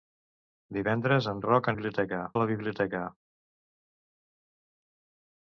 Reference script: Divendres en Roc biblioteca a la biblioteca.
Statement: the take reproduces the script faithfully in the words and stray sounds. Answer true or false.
true